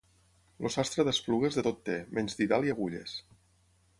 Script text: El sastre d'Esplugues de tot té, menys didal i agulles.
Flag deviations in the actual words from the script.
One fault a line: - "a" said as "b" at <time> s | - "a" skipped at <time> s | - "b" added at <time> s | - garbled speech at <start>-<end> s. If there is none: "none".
none